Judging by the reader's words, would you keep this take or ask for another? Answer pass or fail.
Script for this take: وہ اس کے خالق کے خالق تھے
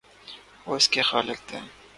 fail